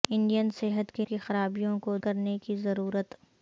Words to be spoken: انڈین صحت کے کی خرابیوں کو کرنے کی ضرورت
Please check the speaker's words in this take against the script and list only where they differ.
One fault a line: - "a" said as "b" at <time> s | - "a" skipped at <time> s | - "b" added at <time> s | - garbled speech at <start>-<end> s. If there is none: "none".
none